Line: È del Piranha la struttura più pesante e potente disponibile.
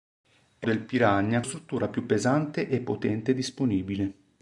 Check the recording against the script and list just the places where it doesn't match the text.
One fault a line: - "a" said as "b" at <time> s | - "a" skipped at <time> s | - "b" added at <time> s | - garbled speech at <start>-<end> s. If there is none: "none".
none